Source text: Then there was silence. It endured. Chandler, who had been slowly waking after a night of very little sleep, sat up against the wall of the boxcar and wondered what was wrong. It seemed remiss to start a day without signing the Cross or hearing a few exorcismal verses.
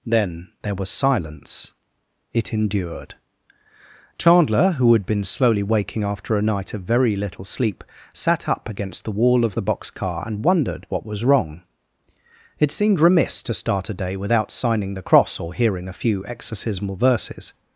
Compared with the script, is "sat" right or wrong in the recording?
right